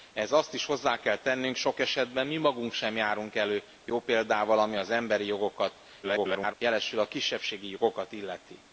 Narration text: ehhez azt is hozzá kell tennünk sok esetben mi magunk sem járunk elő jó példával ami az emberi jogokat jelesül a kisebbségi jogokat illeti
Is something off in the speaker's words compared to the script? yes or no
yes